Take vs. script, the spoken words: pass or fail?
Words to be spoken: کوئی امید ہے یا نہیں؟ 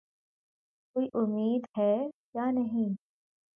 pass